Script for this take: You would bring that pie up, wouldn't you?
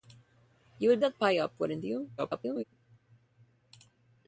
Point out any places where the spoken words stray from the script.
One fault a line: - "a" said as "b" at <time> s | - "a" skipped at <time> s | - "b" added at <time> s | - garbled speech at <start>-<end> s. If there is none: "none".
- "bring" skipped at 1.0 s
- garbled speech at 2.2-2.6 s